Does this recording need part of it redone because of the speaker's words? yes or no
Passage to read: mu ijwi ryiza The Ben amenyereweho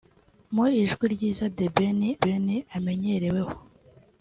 yes